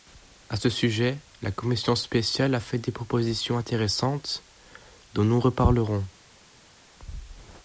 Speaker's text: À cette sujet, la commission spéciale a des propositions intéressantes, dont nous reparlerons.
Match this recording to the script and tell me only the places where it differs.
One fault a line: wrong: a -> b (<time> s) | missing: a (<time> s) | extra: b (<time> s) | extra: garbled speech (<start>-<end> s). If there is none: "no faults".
wrong: cette -> ce (0.6 s)
extra: fait (2.6 s)